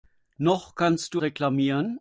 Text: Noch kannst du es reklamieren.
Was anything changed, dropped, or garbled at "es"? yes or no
yes